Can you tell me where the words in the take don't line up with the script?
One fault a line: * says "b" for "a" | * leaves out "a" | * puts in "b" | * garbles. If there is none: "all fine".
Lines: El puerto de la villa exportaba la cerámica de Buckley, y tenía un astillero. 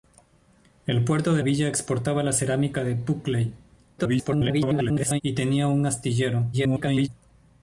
* leaves out "la"
* garbles
* garbles